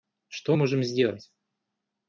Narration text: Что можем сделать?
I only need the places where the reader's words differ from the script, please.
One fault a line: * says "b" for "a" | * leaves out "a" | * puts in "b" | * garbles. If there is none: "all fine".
all fine